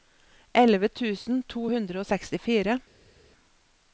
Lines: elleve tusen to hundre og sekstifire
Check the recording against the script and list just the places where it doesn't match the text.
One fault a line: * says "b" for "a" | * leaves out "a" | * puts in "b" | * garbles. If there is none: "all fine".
all fine